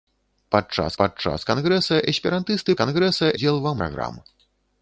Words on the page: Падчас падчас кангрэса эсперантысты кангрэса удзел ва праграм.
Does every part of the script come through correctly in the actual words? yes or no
yes